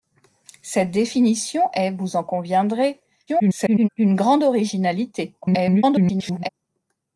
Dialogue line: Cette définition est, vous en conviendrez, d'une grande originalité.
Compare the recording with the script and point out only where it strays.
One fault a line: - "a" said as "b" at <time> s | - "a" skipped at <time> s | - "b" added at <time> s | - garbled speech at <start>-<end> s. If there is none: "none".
- garbled speech at 3.3-3.9 s
- garbled speech at 5.4-6.5 s